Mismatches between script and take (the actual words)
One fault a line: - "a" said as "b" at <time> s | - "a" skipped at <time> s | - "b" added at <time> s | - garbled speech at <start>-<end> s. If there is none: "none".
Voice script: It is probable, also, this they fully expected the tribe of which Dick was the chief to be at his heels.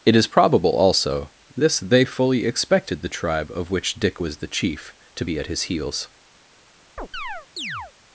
none